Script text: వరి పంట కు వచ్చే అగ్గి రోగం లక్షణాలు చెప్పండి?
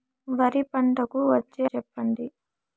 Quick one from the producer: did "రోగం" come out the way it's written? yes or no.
no